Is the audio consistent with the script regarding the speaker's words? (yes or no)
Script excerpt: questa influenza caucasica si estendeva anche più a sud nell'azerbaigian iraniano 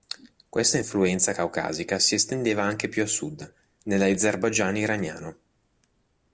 yes